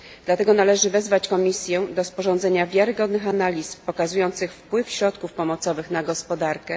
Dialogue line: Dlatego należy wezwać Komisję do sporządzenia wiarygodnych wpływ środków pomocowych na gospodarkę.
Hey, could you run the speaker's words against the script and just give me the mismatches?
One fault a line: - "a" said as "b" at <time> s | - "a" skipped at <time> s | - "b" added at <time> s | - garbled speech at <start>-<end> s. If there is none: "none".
- "analiz pokazujących" added at 3.3 s